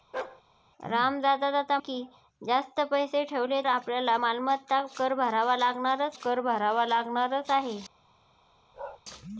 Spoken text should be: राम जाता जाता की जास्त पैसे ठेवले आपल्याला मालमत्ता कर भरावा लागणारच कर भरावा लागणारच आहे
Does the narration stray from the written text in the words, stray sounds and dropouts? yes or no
yes